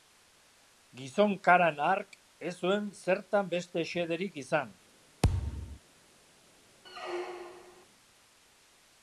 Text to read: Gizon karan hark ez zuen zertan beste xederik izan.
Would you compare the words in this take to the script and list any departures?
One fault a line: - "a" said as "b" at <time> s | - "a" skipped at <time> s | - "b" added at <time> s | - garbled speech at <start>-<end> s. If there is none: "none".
none